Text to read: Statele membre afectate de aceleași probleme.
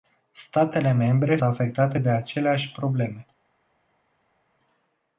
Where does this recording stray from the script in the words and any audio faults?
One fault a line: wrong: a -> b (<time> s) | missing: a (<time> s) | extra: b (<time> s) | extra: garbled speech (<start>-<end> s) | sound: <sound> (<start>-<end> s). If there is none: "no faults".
no faults